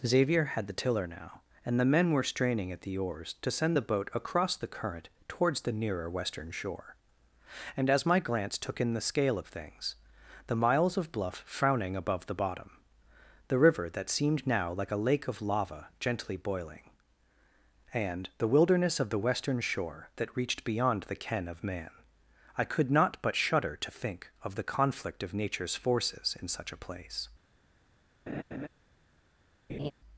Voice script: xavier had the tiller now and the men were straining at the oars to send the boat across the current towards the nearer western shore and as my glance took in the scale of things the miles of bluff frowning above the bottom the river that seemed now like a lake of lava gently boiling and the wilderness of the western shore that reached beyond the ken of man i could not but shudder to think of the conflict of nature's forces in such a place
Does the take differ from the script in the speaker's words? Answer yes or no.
no